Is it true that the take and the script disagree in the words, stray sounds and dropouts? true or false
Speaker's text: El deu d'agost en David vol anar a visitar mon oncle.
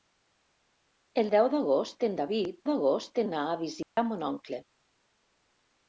true